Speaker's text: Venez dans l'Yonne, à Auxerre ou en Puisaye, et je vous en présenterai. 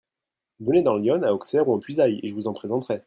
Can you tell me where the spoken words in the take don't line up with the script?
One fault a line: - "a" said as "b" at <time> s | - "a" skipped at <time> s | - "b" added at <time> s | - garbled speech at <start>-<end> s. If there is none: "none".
none